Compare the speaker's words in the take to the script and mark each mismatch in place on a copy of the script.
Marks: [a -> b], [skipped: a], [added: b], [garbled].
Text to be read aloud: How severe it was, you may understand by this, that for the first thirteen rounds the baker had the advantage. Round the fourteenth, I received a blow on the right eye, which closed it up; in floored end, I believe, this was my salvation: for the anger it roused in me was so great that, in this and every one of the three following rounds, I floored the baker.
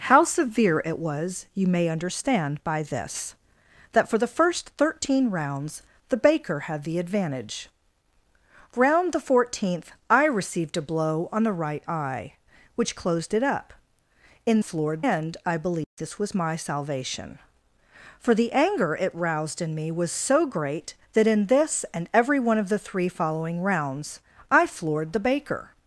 How severe it was, you may understand by this, that for the first thirteen rounds the baker had the advantage. Round the fourteenth, I received a blow on the right eye, which closed it up; in floored end, I believe, this was my salvation: for the anger it roused in me was so great that, in this and every one of the three following rounds, I floored the baker.